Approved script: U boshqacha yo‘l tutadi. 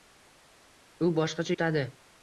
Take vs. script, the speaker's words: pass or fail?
fail